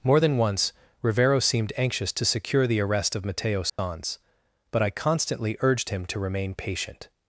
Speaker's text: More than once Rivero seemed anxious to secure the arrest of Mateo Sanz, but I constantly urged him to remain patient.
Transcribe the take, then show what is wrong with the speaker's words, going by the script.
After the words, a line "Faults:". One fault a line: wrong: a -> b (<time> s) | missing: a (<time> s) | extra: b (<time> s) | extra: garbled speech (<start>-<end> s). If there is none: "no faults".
More than once Rivero seemed anxious to secure the arrest of Mateo Sanz, but I constantly urged him to remain patient.
Faults:
no faults